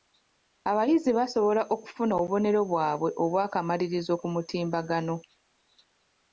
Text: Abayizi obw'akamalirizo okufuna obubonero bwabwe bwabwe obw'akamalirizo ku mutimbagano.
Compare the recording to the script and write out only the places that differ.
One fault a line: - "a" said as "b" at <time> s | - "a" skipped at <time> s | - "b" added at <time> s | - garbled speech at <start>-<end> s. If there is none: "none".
- "obw'akamalirizo" said as "basobola" at 1.2 s
- "bwabwe" skipped at 3.1 s